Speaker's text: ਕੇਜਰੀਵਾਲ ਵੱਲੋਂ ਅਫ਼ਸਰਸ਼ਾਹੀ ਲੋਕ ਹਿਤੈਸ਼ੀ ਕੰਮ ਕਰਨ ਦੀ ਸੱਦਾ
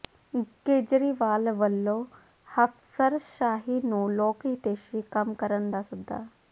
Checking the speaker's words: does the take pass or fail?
fail